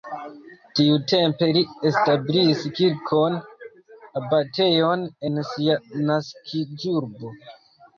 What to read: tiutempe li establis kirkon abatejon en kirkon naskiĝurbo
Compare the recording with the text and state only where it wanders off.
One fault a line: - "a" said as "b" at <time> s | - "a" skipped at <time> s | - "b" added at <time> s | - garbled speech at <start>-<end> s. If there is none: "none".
- "kirkon" said as "sia" at 5.6 s